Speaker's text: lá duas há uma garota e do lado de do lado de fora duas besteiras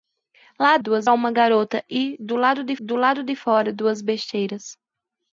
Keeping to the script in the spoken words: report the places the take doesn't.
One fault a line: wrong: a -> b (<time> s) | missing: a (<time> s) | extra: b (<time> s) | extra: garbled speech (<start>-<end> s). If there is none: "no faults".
no faults